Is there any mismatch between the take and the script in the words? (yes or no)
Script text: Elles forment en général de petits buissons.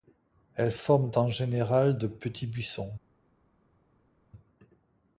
no